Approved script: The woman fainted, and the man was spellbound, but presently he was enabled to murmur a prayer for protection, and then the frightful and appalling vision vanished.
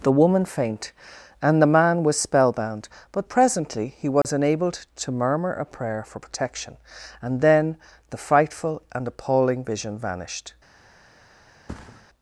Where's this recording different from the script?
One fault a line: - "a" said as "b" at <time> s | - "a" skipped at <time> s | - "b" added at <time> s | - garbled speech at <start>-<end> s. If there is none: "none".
- "fainted" said as "faint" at 0.5 s